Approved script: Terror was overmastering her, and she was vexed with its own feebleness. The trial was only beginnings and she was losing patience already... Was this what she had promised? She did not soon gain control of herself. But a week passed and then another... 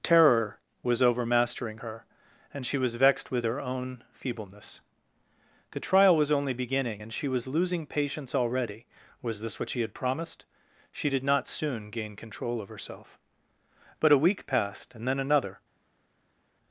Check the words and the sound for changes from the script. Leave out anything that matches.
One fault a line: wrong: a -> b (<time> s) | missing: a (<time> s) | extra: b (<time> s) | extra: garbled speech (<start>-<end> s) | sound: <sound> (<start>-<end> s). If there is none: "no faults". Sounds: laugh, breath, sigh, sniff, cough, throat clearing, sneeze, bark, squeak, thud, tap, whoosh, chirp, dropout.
wrong: its -> her (3.4 s)
wrong: beginnings -> beginning (6.5 s)